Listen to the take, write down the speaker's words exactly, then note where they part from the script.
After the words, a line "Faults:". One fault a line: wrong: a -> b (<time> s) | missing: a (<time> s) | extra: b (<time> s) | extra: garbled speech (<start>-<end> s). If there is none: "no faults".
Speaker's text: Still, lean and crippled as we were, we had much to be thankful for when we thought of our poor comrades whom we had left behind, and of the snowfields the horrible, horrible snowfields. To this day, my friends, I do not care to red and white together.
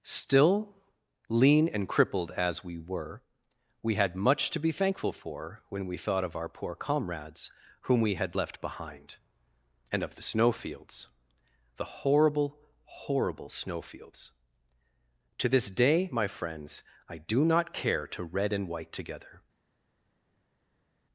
Still, lean and crippled as we were, we had much to be thankful for when we thought of our poor comrades whom we had left behind, and of the snowfields the horrible, horrible snowfields. To this day, my friends, I do not care to red and white together.
Faults:
no faults